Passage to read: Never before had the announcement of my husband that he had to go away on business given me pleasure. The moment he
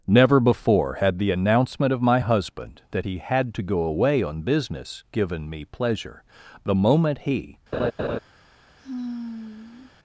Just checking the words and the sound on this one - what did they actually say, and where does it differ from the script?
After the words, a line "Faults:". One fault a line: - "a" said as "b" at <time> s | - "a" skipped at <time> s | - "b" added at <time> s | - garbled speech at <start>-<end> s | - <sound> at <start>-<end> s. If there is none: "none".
Never before had the announcement of my husband that he had to go away on business given me pleasure. The moment he
Faults:
- laugh at 7.7-8.2 s
- sigh at 8.8-9.9 s